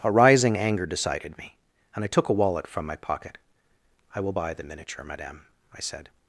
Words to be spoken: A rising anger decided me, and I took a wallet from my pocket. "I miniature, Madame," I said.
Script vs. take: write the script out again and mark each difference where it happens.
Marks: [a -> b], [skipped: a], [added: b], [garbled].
A rising anger decided me, and I took a wallet from my pocket. "I [added: will buy the] miniature, Madame," I said.